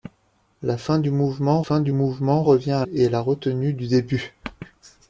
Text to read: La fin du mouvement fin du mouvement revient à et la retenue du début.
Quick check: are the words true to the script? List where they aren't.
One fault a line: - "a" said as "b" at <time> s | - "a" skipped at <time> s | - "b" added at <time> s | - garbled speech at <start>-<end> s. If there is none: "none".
none